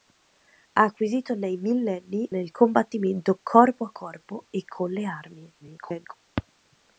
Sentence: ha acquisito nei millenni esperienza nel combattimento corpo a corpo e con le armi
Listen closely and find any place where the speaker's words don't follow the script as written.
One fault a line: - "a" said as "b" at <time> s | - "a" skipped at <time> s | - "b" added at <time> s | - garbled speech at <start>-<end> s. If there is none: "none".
- "esperienza" skipped at 2.3 s
- garbled speech at 5.6-6.1 s